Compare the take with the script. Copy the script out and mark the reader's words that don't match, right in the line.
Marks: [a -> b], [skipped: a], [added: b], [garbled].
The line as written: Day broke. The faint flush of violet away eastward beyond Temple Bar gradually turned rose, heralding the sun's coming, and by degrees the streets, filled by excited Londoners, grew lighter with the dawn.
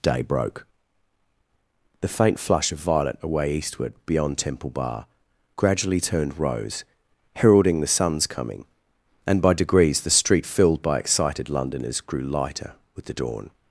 Day broke. The faint flush of violet away eastward beyond Temple Bar gradually turned rose, heralding the sun's coming, and by degrees the [streets, -> street] filled by excited Londoners, grew lighter with the dawn.